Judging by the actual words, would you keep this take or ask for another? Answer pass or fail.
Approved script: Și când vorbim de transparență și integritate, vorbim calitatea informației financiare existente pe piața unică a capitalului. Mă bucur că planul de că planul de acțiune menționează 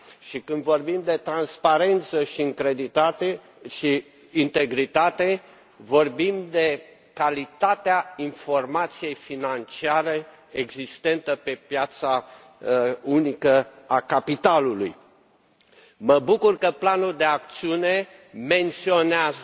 fail